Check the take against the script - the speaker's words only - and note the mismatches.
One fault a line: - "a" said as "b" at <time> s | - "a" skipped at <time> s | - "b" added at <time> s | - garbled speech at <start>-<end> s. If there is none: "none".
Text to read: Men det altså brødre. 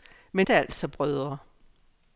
none